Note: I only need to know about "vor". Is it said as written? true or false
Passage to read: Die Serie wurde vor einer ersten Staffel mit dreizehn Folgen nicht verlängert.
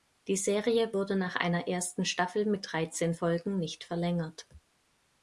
false